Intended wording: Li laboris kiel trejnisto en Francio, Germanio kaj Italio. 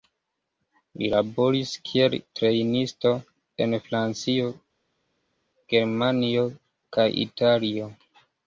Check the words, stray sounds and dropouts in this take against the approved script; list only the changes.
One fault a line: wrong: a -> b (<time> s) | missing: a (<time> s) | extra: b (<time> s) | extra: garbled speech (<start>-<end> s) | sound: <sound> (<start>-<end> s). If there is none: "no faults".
no faults